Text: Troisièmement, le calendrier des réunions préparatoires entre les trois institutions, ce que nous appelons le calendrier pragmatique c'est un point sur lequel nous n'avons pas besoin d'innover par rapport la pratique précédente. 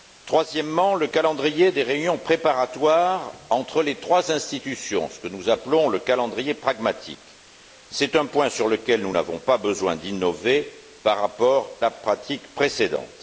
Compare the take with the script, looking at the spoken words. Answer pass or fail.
pass